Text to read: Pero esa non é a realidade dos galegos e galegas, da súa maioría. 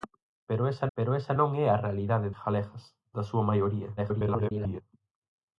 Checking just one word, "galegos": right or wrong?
wrong